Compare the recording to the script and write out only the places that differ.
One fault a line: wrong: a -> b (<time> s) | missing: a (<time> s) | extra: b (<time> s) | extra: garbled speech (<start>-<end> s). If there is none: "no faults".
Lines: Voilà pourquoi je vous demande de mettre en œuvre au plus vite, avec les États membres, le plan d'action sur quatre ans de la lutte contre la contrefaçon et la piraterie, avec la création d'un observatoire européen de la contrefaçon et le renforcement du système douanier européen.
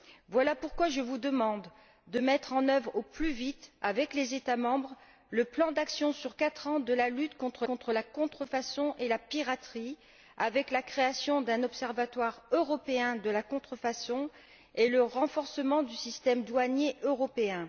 extra: contre (7.6 s)